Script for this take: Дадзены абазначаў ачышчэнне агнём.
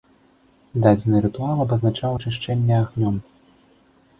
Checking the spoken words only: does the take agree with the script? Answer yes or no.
no